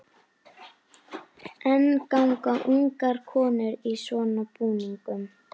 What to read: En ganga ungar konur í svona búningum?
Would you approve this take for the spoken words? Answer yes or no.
yes